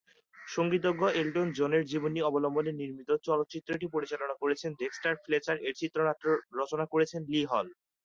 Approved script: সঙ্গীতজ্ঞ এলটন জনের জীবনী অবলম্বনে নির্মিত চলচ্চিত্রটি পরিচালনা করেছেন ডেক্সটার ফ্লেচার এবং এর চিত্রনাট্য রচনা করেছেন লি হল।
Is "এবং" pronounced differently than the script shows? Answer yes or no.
yes